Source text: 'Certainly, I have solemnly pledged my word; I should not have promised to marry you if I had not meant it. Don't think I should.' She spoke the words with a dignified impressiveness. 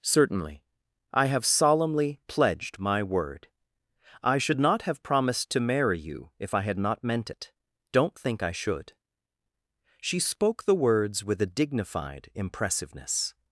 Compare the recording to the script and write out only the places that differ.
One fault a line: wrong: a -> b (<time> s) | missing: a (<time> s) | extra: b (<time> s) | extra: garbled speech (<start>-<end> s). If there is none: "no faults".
no faults